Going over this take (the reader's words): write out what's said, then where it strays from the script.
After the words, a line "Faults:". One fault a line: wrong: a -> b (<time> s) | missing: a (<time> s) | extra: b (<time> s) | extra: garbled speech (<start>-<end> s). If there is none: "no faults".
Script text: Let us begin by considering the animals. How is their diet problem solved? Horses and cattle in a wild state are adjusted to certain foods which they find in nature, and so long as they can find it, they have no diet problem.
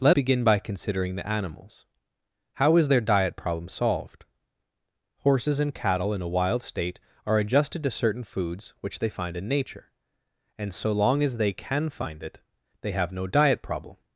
Let begin by considering the animals. How is their diet problem solved? Horses and cattle in a wild state are adjusted to certain foods which they find in nature, and so long as they can find it, they have no diet problem.
Faults:
missing: us (0.1 s)